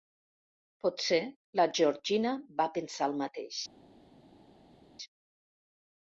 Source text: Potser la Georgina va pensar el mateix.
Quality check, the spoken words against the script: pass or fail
pass